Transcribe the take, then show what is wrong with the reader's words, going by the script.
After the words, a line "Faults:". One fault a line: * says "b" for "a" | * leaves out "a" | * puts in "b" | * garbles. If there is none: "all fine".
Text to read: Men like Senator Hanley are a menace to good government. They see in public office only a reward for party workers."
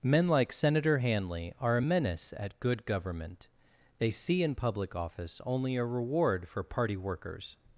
Men like Senator Hanley are a menace at good government. They see in public office only a reward for party workers."
Faults:
* says "at" for "to"